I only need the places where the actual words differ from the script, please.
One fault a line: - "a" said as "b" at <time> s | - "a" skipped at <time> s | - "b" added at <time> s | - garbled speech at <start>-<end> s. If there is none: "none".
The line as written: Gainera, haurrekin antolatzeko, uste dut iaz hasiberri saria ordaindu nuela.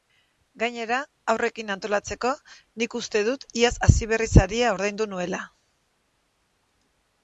- "nik" added at 2.8 s